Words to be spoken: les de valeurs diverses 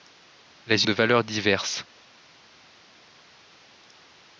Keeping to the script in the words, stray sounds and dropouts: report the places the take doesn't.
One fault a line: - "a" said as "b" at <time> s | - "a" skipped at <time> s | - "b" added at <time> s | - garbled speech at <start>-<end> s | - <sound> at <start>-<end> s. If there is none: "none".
none